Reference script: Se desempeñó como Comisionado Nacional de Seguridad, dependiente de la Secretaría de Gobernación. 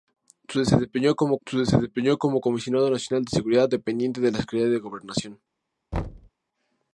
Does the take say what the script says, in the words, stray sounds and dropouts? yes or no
no